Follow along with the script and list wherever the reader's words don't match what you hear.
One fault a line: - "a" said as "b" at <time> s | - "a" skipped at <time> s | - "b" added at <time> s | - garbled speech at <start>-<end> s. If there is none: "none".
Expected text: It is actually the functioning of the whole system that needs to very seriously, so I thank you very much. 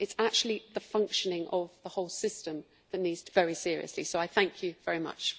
none